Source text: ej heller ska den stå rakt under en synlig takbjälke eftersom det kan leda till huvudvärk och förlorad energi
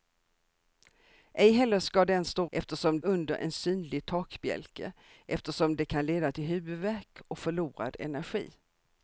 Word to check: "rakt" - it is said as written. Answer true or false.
false